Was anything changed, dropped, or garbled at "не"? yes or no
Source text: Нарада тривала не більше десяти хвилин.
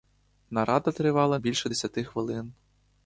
yes